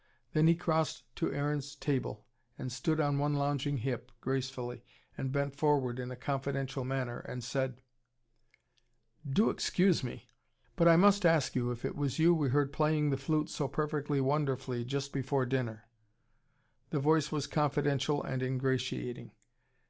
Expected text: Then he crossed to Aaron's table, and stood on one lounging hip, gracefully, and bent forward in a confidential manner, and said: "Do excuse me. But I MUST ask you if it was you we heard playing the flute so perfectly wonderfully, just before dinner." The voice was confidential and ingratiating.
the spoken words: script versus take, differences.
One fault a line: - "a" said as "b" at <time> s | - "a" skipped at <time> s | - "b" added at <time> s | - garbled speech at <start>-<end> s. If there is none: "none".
none